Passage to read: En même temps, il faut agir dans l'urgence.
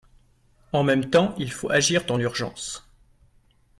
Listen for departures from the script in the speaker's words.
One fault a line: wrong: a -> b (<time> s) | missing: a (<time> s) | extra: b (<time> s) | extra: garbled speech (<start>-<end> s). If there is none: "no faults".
no faults